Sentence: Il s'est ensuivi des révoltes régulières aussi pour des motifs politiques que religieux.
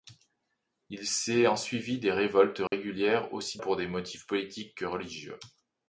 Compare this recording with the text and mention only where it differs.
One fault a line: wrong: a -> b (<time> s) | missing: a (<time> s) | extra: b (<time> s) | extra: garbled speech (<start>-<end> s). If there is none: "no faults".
no faults